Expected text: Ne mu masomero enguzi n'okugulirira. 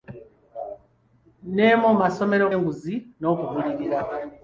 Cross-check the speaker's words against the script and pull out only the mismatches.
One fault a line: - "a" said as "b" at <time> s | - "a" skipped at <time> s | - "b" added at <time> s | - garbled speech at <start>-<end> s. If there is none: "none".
none